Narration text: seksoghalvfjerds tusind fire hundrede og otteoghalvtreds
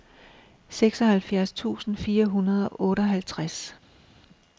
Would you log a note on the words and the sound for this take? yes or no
no